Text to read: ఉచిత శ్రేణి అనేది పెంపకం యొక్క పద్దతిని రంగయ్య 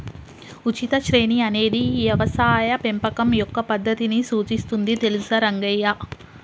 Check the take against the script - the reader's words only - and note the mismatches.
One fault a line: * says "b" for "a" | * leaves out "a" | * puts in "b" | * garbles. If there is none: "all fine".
* puts in "యవసాయ"
* puts in "సూచిస్తుంది తెలుసా"